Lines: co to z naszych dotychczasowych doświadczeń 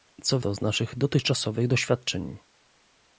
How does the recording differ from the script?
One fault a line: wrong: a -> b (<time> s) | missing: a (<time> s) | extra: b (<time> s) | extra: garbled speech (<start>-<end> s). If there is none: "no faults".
no faults